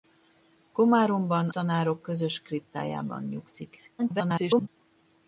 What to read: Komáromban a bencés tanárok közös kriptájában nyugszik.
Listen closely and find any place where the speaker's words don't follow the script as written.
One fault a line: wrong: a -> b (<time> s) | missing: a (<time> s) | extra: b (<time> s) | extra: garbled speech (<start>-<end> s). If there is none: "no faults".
missing: a bencés (1.5 s)
extra: garbled speech (4.0-4.7 s)